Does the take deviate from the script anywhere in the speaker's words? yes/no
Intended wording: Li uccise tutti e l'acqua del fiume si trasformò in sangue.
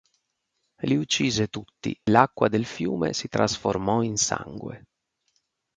yes